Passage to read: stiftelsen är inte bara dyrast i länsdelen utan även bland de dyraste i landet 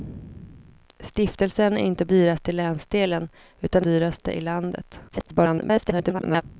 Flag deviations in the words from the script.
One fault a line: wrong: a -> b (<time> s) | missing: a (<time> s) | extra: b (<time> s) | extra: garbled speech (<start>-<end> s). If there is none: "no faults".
missing: bara (2.0 s)
missing: även bland de (3.9 s)
extra: garbled speech (5.1-6.4 s)